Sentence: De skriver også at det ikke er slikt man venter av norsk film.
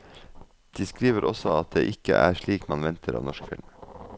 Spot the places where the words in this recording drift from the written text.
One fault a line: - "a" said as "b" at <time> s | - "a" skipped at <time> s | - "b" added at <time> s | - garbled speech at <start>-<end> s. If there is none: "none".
none